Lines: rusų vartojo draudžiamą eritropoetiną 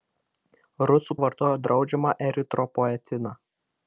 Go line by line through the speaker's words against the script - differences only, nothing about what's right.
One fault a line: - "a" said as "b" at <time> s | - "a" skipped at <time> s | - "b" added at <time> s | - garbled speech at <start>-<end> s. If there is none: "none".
none